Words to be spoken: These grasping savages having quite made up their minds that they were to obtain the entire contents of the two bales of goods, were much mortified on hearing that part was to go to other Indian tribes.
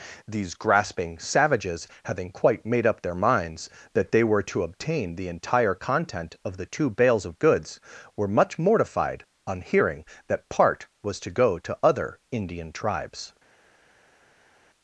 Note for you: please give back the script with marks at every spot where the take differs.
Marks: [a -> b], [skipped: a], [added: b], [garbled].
These grasping savages having quite made up their minds that they were to obtain the entire [contents -> content] of the two bales of goods, were much mortified on hearing that part was to go to other Indian tribes.